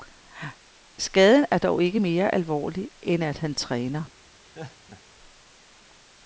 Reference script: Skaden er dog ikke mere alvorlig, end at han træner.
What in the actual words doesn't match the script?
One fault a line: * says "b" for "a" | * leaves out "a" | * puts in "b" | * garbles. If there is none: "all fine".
all fine